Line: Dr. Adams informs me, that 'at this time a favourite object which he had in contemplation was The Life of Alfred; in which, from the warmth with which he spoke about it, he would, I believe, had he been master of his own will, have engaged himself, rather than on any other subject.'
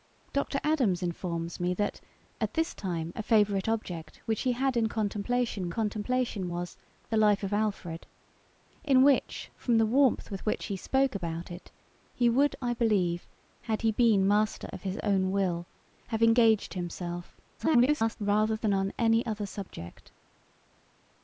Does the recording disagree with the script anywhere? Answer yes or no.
yes